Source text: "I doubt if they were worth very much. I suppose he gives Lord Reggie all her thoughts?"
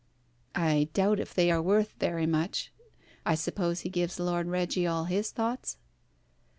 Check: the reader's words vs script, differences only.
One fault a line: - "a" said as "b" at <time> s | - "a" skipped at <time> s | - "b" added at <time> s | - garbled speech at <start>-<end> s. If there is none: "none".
- "were" said as "are" at 1.5 s
- "her" said as "his" at 5.1 s